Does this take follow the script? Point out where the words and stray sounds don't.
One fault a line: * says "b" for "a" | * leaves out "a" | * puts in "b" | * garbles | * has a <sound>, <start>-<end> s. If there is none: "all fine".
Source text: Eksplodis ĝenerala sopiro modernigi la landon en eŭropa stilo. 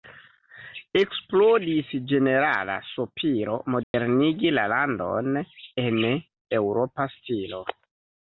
* has a dropout, 3.8-3.9 s